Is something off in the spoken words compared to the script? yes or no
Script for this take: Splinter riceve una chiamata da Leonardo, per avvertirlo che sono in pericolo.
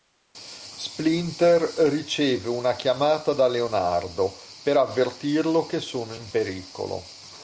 no